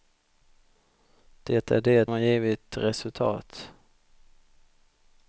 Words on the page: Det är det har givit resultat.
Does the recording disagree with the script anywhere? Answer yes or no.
no